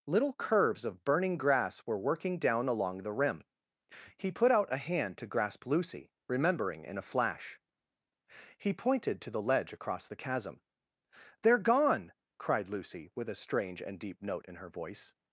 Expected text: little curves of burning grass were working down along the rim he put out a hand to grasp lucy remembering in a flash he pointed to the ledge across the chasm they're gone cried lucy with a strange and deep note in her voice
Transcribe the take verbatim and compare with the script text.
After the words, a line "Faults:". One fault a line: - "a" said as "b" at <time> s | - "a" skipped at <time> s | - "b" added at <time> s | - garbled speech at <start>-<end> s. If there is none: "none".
little curves of burning grass were working down along the rim he put out a hand to grasp lucy remembering in a flash he pointed to the ledge across the chasm they're gone cried lucy with a strange and deep note in her voice
Faults:
none